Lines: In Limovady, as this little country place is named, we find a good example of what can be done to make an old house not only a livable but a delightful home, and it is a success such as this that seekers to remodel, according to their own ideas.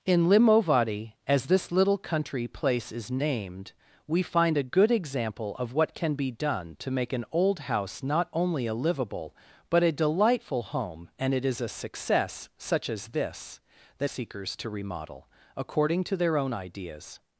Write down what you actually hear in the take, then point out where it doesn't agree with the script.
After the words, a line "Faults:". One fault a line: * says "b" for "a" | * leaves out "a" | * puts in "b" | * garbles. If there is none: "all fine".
In Limovady, as this little country place is named, we find a good example of what can be done to make an old house not only a livable but a delightful home, and it is a success such as this that seekers to remodel, according to their own ideas.
Faults:
all fine